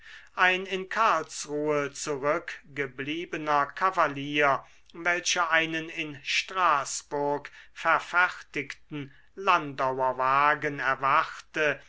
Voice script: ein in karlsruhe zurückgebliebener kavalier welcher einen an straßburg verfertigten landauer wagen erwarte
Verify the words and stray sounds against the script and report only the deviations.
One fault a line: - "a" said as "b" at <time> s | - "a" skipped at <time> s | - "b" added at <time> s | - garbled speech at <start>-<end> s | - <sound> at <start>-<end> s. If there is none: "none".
- "an" said as "in" at 5.9 s